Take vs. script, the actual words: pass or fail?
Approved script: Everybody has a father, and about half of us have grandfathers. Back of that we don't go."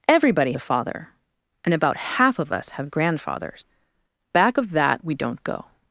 fail